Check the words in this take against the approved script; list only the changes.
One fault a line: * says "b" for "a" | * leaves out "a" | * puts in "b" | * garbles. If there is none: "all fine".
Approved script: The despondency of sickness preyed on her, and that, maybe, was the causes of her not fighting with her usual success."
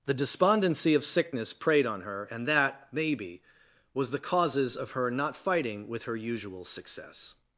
all fine